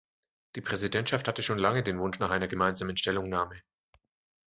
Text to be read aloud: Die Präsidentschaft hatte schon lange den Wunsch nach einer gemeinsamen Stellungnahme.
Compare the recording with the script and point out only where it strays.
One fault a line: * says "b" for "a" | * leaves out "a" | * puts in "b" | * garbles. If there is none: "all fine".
all fine